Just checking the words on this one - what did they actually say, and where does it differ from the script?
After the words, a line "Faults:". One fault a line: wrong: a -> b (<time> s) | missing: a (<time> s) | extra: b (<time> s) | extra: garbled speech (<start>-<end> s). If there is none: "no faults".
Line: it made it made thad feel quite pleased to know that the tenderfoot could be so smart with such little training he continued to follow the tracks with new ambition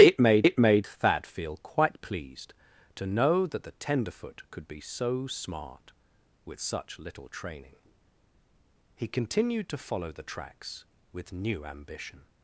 it made it made thad feel quite pleased to know that the tenderfoot could be so smart with such little training he continued to follow the tracks with new ambition
Faults:
no faults